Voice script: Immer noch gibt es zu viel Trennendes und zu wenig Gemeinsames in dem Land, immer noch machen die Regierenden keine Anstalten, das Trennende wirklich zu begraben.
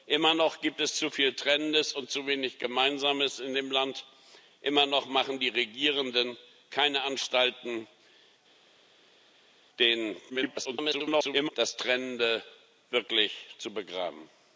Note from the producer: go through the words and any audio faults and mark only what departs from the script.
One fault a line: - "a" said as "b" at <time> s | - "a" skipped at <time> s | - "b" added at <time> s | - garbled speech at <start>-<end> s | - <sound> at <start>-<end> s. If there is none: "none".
- garbled speech at 10.3-11.5 s